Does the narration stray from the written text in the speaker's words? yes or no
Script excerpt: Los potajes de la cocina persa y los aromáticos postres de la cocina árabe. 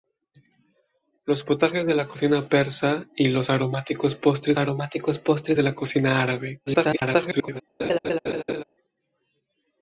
yes